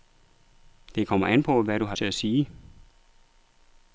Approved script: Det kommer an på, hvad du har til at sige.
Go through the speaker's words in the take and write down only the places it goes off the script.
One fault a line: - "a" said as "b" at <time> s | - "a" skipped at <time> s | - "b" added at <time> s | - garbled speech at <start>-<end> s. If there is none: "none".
none